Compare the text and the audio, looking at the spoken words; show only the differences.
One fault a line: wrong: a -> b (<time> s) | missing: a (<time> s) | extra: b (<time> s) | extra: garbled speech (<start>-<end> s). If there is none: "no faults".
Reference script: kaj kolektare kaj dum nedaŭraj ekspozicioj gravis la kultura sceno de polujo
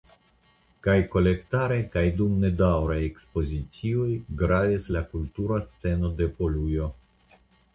no faults